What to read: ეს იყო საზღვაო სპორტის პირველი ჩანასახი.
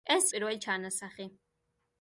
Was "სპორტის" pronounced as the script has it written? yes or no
no